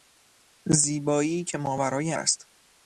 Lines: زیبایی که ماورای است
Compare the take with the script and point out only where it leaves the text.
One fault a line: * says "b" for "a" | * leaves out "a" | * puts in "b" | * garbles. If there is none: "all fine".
all fine